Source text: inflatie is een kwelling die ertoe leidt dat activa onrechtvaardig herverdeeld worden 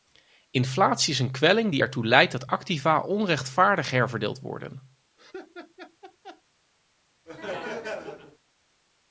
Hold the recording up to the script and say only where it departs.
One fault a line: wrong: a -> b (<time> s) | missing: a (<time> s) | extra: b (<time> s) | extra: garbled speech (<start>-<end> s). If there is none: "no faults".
no faults